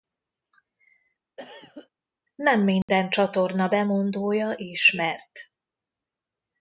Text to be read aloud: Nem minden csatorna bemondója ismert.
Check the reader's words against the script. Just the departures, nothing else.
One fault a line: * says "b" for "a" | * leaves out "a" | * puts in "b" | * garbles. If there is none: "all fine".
all fine